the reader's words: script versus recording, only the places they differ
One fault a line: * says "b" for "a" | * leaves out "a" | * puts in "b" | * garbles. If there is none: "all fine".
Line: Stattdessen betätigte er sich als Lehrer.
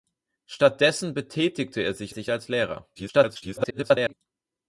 * puts in "sich"
* garbles